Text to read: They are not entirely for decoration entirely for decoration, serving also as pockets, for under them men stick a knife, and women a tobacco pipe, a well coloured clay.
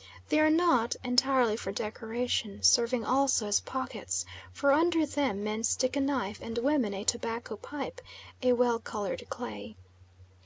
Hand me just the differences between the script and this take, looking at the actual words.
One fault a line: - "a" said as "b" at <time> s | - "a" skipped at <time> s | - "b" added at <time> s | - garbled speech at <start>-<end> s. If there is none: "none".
- "entirely for decoration" skipped at 2.6 s